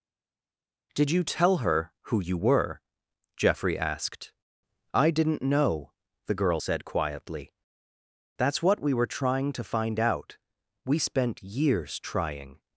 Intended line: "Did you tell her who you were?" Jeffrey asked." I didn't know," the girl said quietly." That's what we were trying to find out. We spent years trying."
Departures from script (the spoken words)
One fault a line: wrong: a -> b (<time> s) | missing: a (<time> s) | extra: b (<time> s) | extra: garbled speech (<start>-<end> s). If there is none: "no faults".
no faults